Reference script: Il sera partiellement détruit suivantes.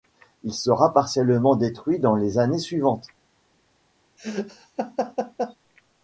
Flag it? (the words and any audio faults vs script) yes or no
yes